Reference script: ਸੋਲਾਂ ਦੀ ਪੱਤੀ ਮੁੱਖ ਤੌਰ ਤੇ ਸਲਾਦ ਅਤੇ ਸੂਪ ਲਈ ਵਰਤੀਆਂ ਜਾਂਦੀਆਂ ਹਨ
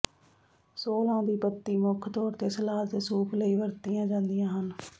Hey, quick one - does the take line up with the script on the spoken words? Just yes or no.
yes